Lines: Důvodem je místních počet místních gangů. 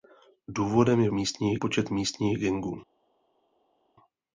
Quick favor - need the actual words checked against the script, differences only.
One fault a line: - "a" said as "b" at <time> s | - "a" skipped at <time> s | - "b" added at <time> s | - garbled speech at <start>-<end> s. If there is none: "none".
none